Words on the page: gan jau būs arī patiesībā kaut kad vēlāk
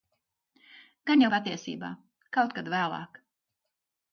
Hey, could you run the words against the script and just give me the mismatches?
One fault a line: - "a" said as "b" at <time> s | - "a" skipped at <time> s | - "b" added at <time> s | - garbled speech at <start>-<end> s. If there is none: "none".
- "būs arī" skipped at 1.3 s